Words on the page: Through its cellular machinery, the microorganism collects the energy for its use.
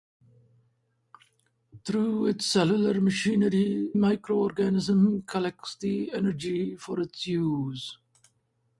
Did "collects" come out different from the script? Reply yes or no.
no